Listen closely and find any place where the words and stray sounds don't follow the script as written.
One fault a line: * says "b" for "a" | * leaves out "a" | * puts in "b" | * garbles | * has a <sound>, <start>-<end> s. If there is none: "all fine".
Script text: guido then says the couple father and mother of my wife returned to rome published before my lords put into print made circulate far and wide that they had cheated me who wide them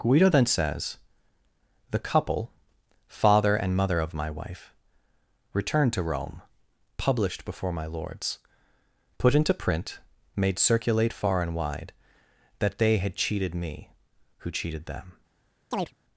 * says "cheated" for "wide"
* has a chirp, 15.7-15.9 s